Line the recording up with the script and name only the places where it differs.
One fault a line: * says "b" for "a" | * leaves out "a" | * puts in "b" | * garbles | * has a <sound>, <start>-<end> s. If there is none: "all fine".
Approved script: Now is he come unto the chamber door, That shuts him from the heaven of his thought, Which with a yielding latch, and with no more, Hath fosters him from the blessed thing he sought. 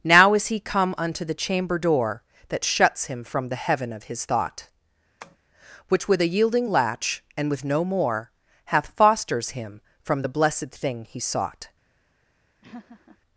* has a tap, 5.2-5.4 s
* has a laugh, 12.6-13.2 s